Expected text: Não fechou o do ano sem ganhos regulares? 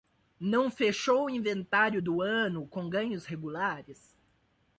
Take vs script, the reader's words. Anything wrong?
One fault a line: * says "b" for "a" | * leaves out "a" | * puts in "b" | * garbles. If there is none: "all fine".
* puts in "inventário"
* says "com" for "sem"